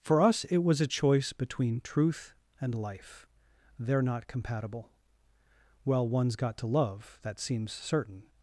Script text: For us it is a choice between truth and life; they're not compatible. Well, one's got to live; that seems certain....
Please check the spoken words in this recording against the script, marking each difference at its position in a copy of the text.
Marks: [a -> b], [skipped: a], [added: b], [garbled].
For us it [is -> was] a choice between truth and life; they're not compatible. Well, one's got to [live; -> love] that seems certain....